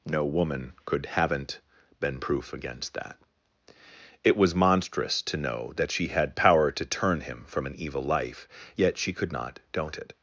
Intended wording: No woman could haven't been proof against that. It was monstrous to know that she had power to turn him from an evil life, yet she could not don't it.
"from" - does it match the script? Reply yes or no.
yes